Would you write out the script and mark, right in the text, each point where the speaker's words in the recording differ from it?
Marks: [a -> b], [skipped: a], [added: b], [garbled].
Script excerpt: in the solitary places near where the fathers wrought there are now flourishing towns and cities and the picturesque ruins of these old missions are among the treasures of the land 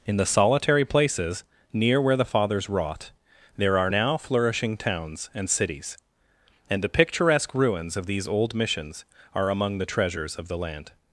in the solitary places near where the fathers wrought there are now flourishing towns and cities and the picturesque ruins of these old missions are among the treasures of the land